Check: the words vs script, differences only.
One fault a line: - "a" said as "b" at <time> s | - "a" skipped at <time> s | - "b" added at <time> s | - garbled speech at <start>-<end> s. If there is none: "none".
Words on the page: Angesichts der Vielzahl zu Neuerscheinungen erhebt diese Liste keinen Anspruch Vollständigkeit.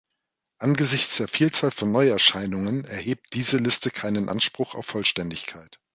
- "zu" said as "von" at 1.7 s
- "auf" added at 4.7 s